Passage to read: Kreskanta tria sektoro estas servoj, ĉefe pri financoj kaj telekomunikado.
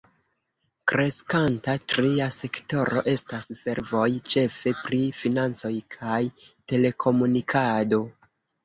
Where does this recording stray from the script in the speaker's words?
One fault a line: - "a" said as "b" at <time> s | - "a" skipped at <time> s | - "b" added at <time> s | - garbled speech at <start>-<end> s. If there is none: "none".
none